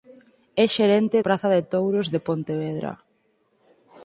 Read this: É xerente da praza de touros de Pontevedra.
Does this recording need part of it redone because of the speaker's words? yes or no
yes